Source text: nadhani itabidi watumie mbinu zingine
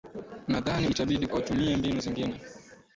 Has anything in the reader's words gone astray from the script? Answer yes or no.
no